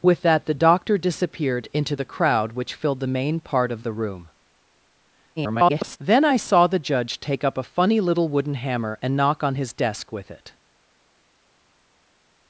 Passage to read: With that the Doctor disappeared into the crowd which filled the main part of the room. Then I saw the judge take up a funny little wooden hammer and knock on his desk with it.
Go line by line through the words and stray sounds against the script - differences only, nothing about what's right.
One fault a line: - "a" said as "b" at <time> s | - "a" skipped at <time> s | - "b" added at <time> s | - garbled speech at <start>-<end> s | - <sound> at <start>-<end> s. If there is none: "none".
- garbled speech at 5.4-6.0 s